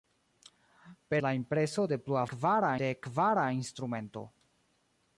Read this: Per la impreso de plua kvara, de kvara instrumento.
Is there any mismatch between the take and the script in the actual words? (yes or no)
no